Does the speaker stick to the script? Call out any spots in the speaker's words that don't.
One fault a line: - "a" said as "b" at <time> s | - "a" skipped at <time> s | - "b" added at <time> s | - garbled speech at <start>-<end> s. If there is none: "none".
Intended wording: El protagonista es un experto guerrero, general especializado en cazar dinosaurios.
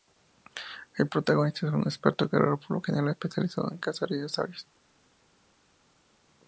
- "por lo" added at 2.6 s